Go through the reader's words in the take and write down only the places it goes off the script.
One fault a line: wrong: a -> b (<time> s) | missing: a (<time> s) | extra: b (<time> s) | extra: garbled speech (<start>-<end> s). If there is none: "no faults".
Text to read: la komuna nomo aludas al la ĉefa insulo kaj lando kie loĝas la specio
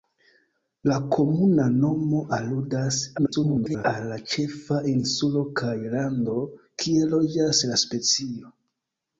extra: garbled speech (3.2-3.9 s)